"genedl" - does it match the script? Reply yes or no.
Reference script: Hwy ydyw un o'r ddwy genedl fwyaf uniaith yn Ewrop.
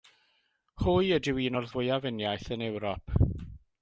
no